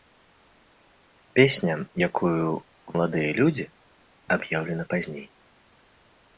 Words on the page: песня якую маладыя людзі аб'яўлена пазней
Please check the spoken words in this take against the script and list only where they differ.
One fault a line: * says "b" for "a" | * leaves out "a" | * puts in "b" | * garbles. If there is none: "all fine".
all fine